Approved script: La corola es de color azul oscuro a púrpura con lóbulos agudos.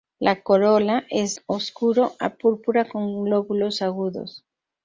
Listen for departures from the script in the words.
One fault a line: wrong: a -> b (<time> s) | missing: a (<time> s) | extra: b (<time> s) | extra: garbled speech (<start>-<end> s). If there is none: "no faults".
missing: de color azul (1.4 s)